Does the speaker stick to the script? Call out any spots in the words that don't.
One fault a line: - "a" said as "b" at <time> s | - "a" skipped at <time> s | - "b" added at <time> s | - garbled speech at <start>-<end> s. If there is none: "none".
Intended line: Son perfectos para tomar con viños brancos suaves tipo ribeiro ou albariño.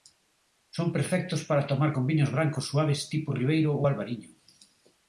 none